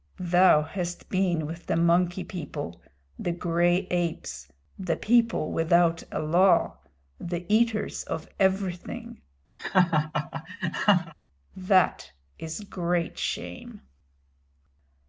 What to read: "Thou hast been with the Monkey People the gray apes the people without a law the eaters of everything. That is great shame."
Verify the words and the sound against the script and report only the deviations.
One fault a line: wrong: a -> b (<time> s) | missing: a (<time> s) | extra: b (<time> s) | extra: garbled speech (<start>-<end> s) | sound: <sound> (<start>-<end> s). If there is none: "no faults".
sound: laugh (9.6-11.1 s)